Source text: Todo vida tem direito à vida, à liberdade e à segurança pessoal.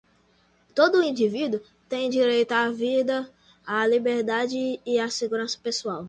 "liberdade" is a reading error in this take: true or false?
false